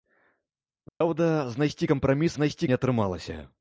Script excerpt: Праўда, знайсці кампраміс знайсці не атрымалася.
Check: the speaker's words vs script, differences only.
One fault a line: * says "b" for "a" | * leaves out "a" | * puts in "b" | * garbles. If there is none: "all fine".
all fine